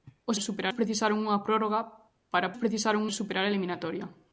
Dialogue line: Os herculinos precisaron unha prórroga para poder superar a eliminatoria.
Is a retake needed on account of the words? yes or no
yes